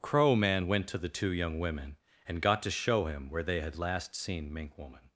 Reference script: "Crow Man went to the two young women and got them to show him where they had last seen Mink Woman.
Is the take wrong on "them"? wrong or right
wrong